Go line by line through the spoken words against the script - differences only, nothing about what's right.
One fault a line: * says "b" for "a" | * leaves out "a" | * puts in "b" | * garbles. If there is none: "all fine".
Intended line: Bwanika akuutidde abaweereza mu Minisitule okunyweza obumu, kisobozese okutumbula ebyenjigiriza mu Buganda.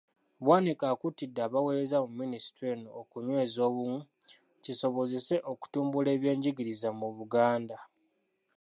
* puts in "eno"